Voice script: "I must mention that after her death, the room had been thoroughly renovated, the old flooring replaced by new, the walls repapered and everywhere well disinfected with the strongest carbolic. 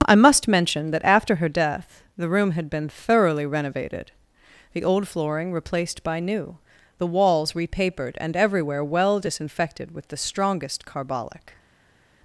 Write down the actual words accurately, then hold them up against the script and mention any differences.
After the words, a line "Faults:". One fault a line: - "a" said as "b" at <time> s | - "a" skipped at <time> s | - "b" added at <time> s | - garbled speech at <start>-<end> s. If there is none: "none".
"I must mention that after her death, the room had been thoroughly renovated, the old flooring replaced by new, the walls repapered and everywhere well disinfected with the strongest carbolic.
Faults:
none